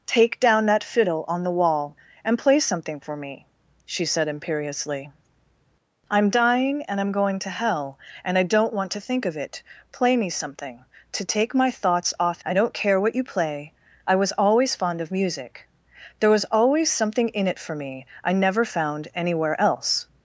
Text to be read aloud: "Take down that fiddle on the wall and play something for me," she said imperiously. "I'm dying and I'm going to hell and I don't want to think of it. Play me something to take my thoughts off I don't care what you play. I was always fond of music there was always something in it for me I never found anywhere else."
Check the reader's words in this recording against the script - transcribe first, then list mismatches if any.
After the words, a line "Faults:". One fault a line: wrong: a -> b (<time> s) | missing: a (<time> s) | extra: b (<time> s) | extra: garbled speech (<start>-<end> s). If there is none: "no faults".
"Take down that fiddle on the wall and play something for me," she said imperiously. "I'm dying and I'm going to hell and I don't want to think of it. Play me something to take my thoughts off I don't care what you play. I was always fond of music there was always something in it for me I never found anywhere else."
Faults:
no faults